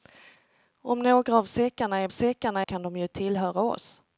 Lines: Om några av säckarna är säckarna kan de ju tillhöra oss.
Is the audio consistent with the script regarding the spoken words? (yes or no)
yes